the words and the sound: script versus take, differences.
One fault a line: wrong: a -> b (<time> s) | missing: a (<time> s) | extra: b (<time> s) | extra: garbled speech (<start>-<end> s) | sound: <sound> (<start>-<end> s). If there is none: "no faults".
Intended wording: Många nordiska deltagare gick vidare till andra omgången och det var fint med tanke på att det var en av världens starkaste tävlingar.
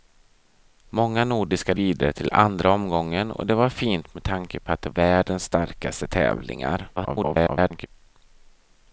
missing: deltagare gick (1.7 s)
missing: var en av (4.9 s)
extra: garbled speech (7.0-7.9 s)